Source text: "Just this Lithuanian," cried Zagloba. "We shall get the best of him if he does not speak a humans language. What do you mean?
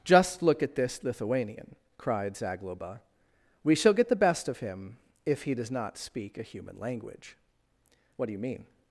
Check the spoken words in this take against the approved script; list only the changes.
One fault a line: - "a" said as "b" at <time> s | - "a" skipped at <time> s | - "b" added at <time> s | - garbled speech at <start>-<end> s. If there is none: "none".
- "look at" added at 0.4 s
- "humans" said as "human" at 6.4 s